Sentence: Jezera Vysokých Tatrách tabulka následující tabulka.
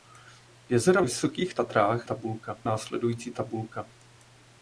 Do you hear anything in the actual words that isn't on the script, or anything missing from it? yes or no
no